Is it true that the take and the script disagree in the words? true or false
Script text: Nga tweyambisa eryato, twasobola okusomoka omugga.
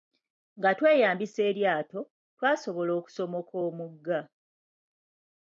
false